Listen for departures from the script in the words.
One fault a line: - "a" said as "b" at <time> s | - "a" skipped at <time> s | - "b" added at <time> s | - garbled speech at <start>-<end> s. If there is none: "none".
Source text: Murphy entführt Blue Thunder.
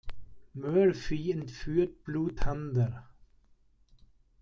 none